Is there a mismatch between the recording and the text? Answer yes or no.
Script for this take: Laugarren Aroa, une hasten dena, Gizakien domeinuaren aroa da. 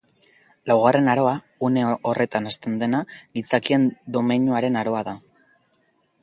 yes